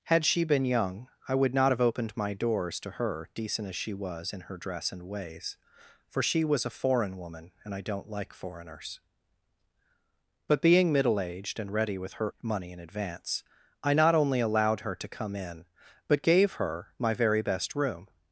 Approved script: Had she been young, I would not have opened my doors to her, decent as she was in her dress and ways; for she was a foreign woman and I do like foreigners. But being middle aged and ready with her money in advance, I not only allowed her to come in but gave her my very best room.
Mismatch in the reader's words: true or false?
true